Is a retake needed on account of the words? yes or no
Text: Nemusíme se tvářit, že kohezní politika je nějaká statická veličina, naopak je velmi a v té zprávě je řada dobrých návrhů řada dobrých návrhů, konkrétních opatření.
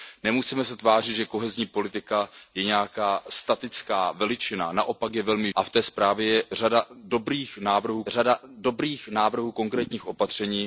no